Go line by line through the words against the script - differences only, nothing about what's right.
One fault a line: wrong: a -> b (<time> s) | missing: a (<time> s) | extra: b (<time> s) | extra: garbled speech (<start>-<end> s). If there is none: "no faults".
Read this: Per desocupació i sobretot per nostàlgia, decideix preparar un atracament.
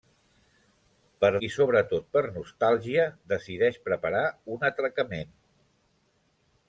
missing: desocupació (1.3 s)